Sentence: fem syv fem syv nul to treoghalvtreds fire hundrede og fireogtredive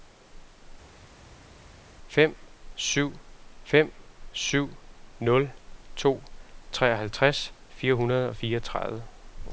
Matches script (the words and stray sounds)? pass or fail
pass